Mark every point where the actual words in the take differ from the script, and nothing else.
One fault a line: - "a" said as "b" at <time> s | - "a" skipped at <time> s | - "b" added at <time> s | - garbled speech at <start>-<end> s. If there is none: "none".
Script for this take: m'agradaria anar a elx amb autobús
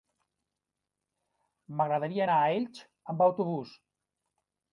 none